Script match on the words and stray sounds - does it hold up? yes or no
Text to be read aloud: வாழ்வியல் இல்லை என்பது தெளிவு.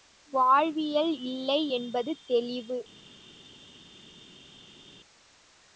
yes